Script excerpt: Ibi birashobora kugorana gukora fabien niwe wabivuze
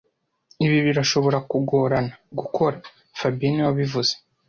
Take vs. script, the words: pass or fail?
pass